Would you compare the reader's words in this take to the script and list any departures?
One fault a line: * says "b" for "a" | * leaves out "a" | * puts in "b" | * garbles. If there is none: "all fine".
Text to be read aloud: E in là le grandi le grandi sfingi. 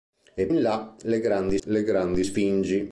all fine